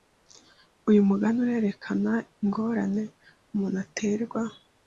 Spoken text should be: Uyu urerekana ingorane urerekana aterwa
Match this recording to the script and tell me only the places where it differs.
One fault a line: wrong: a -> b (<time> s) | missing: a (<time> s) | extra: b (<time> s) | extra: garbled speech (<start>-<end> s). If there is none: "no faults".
extra: mugani (1.1 s)
wrong: urerekana -> umuntu (3.5 s)